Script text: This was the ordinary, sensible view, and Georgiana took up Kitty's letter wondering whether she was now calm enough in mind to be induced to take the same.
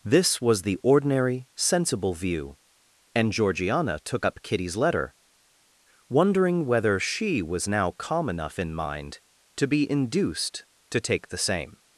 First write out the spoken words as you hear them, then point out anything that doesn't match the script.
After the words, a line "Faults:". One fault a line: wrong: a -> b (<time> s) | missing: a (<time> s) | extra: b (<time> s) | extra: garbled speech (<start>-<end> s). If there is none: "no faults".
This was the ordinary, sensible view, and Georgiana took up Kitty's letter wondering whether she was now calm enough in mind to be induced to take the same.
Faults:
no faults